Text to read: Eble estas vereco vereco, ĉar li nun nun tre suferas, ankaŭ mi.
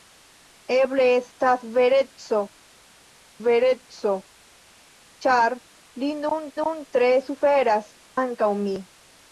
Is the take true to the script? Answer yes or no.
yes